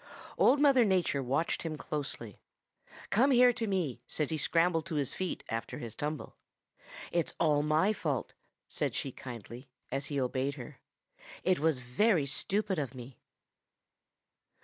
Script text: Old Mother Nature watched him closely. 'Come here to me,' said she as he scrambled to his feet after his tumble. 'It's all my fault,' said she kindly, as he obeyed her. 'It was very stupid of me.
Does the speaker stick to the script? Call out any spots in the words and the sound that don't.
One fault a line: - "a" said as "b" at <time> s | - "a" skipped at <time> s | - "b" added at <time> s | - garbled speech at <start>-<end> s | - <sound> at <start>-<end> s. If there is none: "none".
- "she as" skipped at 4.3 s